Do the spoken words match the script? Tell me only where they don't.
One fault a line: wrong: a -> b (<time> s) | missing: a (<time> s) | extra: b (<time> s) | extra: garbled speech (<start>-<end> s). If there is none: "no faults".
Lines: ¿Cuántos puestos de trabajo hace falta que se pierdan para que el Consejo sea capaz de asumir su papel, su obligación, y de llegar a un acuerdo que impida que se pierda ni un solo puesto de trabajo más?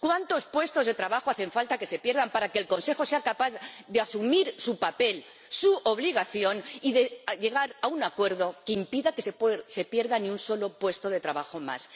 no faults